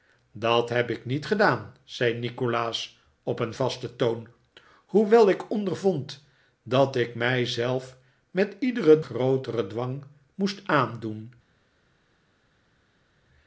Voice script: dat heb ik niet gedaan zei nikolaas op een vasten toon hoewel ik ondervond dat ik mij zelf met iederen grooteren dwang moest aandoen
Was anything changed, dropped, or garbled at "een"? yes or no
no